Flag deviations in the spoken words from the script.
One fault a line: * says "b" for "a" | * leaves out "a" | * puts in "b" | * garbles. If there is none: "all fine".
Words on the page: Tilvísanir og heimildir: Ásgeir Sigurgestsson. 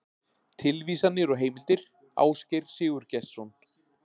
all fine